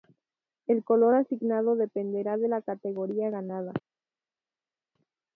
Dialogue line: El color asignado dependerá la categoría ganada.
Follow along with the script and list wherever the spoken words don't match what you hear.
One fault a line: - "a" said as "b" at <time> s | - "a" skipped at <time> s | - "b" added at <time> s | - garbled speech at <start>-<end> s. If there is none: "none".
- "de" added at 2.4 s